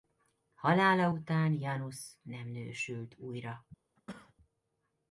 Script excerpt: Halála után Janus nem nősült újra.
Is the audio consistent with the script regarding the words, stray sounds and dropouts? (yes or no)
no